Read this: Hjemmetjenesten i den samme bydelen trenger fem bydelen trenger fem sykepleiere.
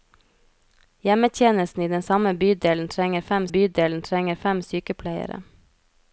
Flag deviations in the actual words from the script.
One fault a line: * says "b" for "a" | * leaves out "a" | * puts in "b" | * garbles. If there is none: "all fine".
all fine